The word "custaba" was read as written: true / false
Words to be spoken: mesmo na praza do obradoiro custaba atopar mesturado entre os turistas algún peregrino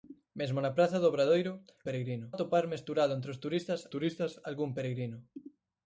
false